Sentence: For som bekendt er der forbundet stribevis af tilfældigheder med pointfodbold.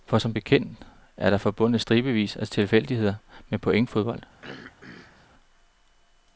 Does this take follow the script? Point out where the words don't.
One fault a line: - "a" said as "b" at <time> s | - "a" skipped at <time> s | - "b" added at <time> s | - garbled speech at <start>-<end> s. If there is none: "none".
none